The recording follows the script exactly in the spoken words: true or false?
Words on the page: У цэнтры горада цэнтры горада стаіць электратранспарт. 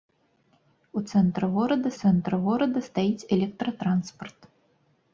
true